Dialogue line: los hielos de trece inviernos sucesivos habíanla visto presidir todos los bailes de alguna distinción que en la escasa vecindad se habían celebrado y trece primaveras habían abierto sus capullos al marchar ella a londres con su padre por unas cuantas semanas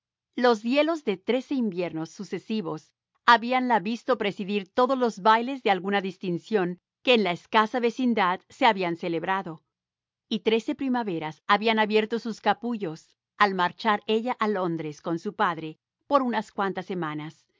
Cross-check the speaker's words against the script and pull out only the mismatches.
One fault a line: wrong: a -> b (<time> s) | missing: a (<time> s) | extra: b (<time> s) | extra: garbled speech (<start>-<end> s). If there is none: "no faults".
no faults